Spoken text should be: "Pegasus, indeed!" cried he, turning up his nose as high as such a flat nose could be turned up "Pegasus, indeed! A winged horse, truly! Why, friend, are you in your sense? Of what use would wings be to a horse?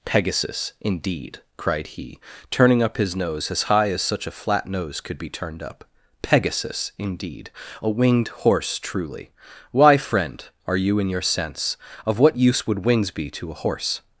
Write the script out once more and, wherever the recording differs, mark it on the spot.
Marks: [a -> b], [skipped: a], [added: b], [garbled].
"Pegasus, indeed!" cried he, turning up his nose as high as such a flat nose could be turned up "Pegasus, indeed! A winged horse, truly! Why, friend, are you in your sense? Of what use would wings be to a horse?